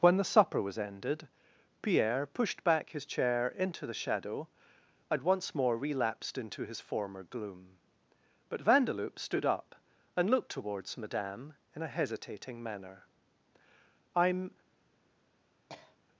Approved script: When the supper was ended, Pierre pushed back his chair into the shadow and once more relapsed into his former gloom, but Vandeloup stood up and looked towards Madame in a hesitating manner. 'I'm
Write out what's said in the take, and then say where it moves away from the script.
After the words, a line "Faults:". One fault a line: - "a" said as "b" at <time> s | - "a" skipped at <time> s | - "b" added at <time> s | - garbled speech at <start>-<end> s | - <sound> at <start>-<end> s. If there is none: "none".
When the supper was ended, Pierre pushed back his chair into the shadow and once more relapsed into his former gloom, but Vandeloup stood up and looked towards Madame in a hesitating manner. 'I'm
Faults:
- cough at 15.7-16.0 s